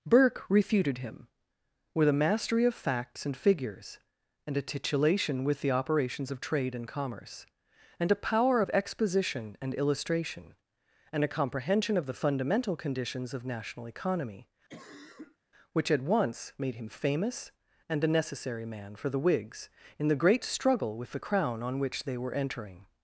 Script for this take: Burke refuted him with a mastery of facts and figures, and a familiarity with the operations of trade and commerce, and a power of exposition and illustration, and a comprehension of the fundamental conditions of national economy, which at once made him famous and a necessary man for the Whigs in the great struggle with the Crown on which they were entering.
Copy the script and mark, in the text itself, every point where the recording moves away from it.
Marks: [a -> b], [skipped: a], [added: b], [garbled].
Burke refuted him with a mastery of facts and figures, and a [familiarity -> titulation] with the operations of trade and commerce, and a power of exposition and illustration, and a comprehension of the fundamental conditions of national economy, which at once made him famous and a necessary man for the Whigs in the great struggle with the Crown on which they were entering.